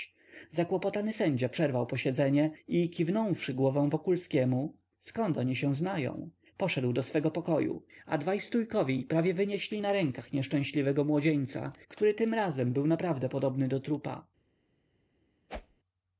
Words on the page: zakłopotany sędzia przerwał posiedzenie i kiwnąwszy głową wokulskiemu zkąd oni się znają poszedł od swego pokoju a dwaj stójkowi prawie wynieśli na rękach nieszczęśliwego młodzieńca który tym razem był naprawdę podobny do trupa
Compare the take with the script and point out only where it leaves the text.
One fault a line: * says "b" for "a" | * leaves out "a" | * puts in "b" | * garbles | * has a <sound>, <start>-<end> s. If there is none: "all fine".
* says "do" for "od"
* has a whoosh, 15.5-15.8 s